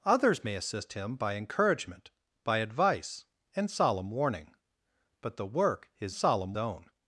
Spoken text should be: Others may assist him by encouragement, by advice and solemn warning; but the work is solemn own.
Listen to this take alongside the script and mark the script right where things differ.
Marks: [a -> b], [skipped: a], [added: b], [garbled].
Others may assist him by encouragement, by advice and solemn warning; but the work is solemn own.